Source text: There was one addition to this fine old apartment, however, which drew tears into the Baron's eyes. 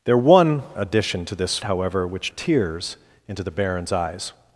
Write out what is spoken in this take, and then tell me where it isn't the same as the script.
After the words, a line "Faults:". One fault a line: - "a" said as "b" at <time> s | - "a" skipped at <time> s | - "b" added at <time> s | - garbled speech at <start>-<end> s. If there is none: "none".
There was addition to this however, which tears into the Baron's eyes.
Faults:
- "one" skipped at 0.6 s
- "fine old apartment" skipped at 1.6 s
- "drew" skipped at 2.3 s